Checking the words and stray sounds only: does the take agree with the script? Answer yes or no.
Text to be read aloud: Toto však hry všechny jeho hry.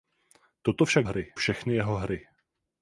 yes